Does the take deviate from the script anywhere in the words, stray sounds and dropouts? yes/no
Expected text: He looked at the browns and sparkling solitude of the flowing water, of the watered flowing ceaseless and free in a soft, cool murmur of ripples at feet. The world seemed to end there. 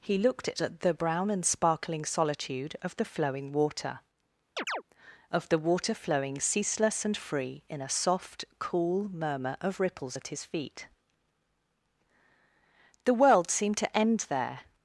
yes